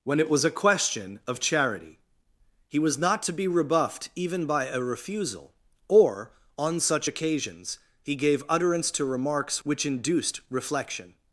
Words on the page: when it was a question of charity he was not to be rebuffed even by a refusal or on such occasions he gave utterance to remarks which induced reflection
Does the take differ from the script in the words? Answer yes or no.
no